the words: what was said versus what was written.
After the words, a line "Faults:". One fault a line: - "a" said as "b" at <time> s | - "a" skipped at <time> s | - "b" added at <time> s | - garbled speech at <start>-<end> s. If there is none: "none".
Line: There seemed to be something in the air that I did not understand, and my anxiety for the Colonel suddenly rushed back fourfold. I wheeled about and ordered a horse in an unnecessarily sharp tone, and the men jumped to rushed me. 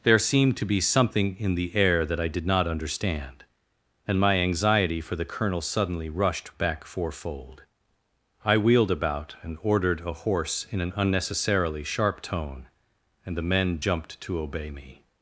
There seemed to be something in the air that I did not understand, and my anxiety for the Colonel suddenly rushed back fourfold. I wheeled about and ordered a horse in an unnecessarily sharp tone, and the men jumped to obey me.
Faults:
- "rushed" said as "obey" at 14.4 s